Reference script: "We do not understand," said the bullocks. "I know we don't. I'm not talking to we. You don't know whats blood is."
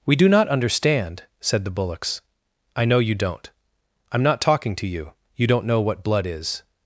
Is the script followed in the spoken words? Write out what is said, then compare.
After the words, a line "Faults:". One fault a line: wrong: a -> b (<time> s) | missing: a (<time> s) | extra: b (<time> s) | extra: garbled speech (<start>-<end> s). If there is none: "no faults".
"We do not understand," said the bullocks. "I know you don't. I'm not talking to you. You don't know what blood is."
Faults:
wrong: we -> you (3.0 s)
wrong: we -> you (4.9 s)
wrong: whats -> what (5.8 s)